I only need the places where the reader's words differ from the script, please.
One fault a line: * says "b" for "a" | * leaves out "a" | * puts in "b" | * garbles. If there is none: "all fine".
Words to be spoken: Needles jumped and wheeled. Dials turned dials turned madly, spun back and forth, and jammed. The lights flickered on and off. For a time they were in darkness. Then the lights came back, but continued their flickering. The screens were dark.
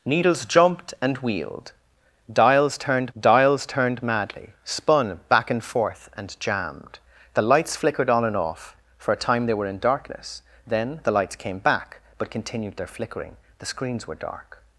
all fine